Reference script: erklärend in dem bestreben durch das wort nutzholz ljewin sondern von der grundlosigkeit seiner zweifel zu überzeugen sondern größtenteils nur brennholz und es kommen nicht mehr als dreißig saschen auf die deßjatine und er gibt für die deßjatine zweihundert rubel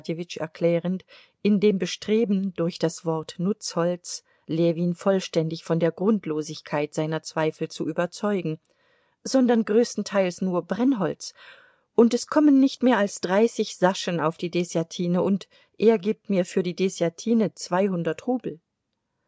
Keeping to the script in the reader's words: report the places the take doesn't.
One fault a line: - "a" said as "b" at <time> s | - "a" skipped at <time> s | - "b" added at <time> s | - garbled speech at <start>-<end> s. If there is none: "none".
- "sondern" said as "vollständig" at 4.9 s
- "mir" added at 16.3 s